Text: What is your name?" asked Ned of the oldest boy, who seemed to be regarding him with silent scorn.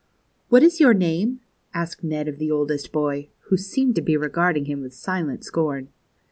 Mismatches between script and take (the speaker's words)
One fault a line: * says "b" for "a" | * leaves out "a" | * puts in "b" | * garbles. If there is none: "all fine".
all fine